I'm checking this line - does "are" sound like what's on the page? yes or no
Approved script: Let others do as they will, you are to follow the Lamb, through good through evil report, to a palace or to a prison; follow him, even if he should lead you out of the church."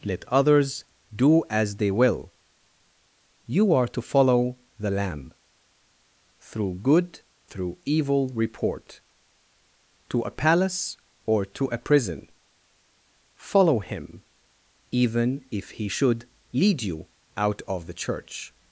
yes